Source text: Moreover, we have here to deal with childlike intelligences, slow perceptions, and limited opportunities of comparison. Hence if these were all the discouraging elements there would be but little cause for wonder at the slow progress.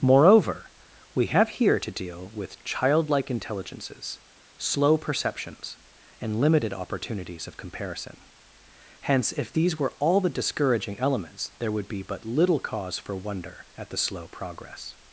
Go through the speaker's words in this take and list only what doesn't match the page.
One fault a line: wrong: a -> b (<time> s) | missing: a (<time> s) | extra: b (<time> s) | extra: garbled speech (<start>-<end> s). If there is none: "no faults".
no faults